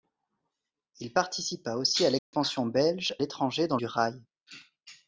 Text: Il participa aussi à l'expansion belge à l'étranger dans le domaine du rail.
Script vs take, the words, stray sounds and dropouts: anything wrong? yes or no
yes